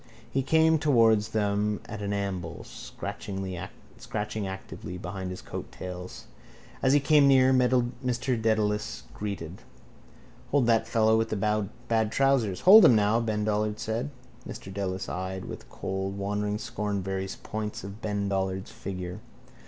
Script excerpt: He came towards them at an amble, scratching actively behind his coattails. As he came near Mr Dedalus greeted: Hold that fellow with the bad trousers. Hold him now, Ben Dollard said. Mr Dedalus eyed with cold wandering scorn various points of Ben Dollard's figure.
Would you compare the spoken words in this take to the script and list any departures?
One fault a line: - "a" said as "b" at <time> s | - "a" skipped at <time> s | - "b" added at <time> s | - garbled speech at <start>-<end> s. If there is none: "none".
none